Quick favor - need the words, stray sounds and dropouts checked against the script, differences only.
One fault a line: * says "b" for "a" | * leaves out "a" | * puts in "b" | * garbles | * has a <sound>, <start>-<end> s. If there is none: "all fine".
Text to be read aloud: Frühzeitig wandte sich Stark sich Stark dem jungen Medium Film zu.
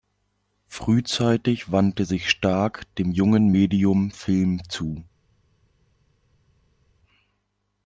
* leaves out "sich Stark"